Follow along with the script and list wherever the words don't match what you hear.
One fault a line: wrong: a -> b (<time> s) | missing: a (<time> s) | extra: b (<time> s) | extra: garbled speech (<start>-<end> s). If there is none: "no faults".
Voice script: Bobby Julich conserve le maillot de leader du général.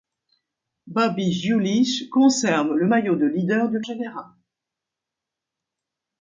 no faults